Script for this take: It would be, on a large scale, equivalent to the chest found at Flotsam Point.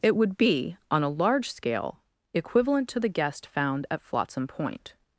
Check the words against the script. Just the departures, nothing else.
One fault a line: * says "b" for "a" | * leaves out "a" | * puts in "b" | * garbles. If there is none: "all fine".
* says "guest" for "chest"